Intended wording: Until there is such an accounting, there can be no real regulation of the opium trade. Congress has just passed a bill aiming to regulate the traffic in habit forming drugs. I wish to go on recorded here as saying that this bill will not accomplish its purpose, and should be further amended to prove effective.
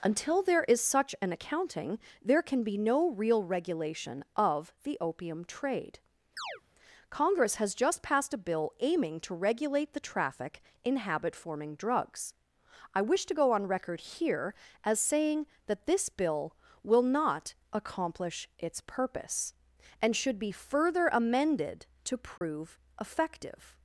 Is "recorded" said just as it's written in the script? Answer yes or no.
no